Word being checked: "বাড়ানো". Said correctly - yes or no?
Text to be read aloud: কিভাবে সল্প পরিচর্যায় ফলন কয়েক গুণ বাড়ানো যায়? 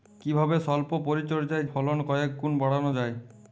yes